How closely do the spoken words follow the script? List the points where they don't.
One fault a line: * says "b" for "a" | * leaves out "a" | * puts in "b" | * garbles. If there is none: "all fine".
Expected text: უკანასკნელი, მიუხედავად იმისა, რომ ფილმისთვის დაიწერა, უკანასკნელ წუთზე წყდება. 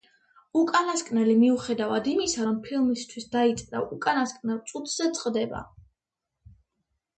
all fine